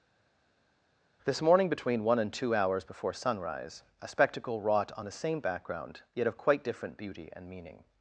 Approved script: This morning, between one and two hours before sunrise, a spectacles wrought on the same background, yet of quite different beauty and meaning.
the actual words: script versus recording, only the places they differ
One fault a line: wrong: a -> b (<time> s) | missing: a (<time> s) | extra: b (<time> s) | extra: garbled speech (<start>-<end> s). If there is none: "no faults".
wrong: spectacles -> spectacle (4.1 s)